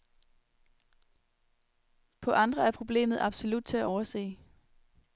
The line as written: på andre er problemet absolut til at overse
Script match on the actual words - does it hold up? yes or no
yes